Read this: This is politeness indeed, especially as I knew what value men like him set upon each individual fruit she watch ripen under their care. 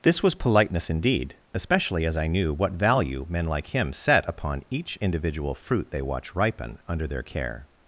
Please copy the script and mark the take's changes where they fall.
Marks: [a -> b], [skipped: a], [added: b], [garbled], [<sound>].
This [is -> was] politeness indeed, especially as I knew what value men like him set upon each individual fruit [she -> they] watch ripen under their care.